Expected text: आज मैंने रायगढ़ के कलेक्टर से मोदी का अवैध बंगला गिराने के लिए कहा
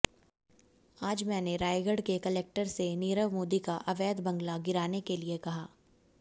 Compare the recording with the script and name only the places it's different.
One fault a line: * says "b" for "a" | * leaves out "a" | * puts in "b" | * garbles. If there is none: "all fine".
* puts in "नीरव"